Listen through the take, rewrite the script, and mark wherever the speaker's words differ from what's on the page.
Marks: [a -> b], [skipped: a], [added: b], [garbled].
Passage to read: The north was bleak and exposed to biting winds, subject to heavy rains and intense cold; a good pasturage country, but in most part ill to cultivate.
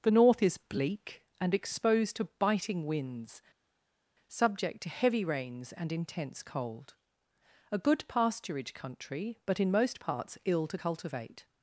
The north [was -> is] bleak and exposed to biting winds, subject to heavy rains and intense cold; a good pasturage country, but in most [part -> parts] ill to cultivate.